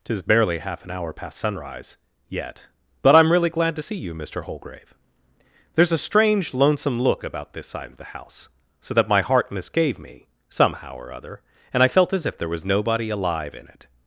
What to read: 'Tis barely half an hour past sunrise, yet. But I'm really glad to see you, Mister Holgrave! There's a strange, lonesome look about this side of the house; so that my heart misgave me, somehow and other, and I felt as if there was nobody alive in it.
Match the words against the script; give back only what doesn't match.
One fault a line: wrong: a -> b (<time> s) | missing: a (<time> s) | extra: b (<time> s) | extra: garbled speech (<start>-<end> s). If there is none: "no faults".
wrong: and -> or (10.9 s)